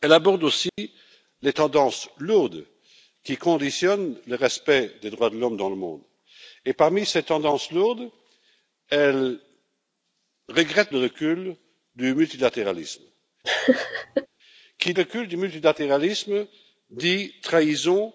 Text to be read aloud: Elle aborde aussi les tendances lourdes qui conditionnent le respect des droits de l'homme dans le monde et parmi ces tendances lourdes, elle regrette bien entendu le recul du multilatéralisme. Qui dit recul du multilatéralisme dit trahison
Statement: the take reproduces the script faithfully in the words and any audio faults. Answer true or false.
false